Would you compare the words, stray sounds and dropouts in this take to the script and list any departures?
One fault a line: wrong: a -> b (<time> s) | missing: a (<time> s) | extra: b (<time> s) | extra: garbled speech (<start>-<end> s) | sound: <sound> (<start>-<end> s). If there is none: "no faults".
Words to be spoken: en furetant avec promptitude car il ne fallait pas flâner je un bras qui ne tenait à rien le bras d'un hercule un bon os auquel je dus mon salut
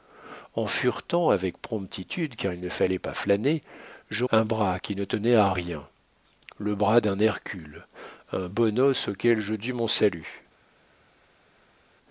no faults